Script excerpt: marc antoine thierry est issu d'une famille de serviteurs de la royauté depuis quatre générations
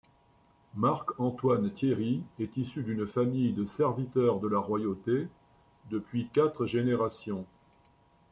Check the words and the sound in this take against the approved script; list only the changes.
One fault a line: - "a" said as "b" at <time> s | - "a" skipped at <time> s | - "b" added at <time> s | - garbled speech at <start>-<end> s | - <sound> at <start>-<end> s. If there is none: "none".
none